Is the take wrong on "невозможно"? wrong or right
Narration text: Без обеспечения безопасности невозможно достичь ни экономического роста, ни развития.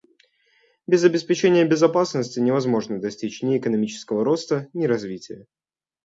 right